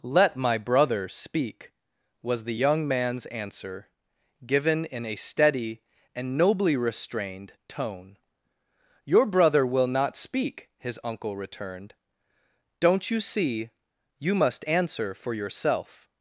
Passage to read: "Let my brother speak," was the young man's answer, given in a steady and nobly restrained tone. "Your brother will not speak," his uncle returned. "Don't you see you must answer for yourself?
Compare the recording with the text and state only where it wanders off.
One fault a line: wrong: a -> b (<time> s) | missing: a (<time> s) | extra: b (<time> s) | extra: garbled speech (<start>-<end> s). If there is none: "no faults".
no faults